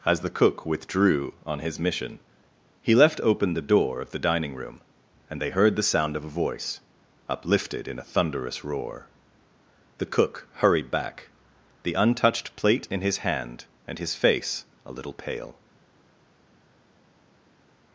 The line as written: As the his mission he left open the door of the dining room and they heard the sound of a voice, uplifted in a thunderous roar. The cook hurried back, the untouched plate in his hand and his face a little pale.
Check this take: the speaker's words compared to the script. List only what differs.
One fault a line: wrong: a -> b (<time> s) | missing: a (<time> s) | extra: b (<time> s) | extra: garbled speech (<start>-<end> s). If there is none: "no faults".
extra: cook withdrew on (0.3 s)